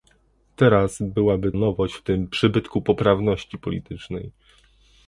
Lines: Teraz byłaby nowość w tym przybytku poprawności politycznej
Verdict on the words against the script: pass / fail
pass